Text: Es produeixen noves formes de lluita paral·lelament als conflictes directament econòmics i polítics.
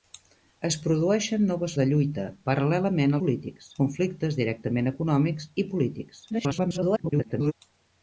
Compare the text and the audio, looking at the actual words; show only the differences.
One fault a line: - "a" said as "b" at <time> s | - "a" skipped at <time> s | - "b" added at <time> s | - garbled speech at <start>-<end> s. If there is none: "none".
- "formes" skipped at 1.8 s
- "als" said as "polítics" at 3.2 s
- garbled speech at 6.3-7.5 s